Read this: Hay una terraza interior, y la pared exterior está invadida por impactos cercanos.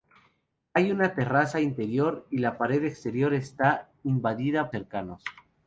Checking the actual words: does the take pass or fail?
fail